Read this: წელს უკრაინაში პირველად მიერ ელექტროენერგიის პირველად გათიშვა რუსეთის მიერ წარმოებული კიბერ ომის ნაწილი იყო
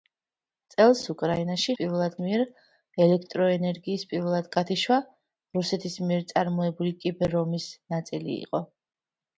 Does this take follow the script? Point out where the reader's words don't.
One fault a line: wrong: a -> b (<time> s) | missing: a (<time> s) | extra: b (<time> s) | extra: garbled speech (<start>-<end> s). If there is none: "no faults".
no faults